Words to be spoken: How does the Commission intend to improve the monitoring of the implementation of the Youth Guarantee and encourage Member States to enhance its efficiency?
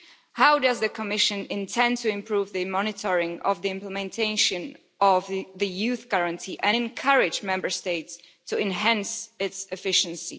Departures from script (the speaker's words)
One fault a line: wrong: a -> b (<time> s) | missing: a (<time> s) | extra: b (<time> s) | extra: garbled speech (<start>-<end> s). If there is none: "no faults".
no faults